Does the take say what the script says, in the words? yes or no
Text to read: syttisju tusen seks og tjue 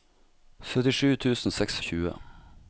yes